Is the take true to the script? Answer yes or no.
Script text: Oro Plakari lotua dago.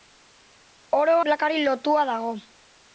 yes